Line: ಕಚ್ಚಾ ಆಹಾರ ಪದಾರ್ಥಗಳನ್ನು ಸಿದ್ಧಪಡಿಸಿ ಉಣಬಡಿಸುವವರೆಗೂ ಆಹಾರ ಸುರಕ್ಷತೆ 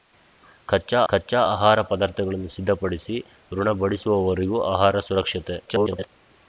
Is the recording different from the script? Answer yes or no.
yes